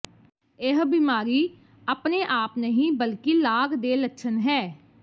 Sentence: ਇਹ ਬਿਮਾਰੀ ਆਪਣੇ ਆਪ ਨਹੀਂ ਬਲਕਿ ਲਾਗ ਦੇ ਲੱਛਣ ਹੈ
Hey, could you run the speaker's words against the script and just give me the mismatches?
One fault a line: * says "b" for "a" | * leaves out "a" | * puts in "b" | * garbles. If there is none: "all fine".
all fine